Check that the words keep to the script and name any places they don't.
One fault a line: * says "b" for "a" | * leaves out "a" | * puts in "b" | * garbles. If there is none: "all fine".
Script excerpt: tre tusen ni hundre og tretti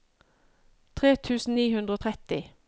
all fine